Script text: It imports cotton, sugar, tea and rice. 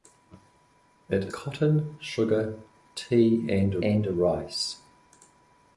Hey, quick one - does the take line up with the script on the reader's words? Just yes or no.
no